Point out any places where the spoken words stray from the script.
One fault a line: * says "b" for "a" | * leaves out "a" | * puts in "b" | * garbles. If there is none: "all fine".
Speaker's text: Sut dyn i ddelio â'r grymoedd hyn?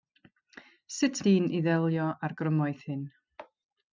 all fine